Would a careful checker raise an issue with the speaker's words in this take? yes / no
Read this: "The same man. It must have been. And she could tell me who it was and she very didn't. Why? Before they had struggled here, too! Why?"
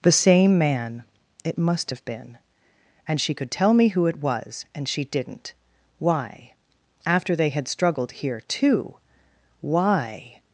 yes